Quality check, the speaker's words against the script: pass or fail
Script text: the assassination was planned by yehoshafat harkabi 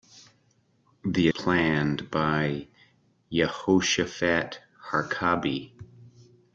fail